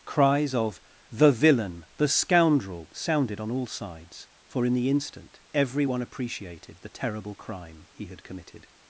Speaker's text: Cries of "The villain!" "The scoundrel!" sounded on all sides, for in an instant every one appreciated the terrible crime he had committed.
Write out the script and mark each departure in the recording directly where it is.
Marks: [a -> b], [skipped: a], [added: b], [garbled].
Cries of "The villain!" "The scoundrel!" sounded on all sides, for in [an -> the] instant every one appreciated the terrible crime he had committed.